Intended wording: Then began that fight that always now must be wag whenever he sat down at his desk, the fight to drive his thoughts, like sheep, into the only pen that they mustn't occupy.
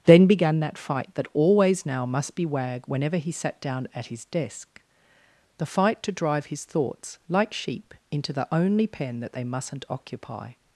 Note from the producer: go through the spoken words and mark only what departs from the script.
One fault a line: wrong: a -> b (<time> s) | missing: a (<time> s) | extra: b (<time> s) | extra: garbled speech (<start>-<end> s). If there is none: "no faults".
no faults